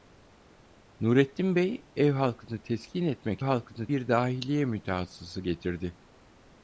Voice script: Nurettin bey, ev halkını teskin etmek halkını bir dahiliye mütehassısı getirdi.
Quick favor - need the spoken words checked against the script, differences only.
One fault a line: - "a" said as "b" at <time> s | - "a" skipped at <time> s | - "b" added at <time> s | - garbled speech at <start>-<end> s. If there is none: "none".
none